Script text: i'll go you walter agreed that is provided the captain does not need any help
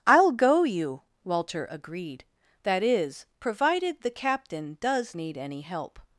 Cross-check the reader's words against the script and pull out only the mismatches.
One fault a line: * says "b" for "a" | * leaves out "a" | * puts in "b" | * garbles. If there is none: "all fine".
* leaves out "not"